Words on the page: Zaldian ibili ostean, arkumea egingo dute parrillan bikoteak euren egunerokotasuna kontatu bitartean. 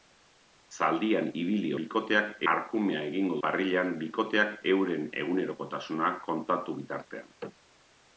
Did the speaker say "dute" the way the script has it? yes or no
no